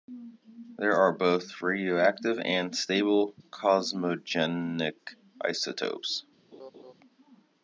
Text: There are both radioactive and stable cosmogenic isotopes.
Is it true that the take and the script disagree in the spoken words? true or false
false